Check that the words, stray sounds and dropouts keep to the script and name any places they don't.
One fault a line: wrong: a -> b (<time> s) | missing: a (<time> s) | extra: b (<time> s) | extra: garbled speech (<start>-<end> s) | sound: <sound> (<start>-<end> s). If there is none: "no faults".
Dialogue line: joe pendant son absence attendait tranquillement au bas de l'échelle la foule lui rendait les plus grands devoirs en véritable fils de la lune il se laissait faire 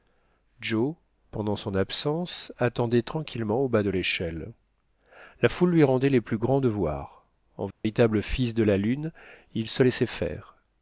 sound: dropout (7.7-7.8 s)